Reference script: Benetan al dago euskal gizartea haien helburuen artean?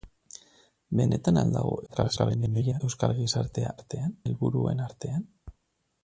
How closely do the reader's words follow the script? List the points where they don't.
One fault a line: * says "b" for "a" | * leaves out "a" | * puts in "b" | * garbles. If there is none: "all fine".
* garbles
* says "artean" for "haien"